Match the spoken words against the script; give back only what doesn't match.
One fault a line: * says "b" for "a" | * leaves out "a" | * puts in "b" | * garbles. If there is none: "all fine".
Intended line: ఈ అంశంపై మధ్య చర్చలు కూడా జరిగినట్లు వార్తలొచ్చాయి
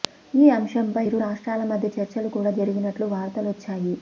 * puts in "ఇరు రాష్ట్రాల"